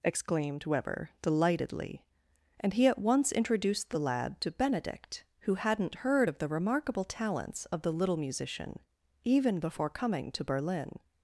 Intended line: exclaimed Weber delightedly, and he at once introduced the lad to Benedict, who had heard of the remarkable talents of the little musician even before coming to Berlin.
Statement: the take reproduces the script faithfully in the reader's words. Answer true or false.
false